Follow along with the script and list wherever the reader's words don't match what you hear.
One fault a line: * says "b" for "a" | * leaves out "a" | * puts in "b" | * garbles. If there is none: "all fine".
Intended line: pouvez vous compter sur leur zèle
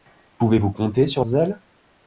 * leaves out "leur"